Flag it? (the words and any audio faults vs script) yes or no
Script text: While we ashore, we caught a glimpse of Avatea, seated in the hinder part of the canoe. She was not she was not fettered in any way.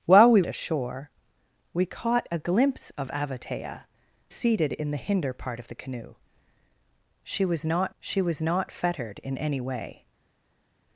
no